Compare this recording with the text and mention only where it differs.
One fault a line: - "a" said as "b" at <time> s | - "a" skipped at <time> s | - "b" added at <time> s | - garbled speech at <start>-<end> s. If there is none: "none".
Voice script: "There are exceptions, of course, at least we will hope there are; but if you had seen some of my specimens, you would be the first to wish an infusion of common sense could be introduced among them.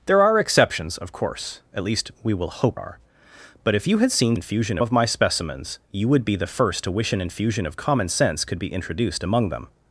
- "there" skipped at 2.8 s
- "some" said as "infusion" at 4.3 s